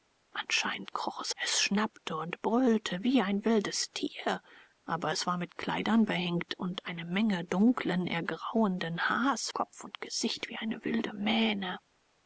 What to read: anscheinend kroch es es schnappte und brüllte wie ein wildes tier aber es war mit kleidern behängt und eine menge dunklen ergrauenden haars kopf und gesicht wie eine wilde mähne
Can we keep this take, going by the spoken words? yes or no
yes